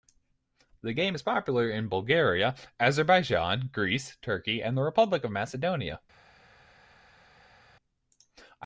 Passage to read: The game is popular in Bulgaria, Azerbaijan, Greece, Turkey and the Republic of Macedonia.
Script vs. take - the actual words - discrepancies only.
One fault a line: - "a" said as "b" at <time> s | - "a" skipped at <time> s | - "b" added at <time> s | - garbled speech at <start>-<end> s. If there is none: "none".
none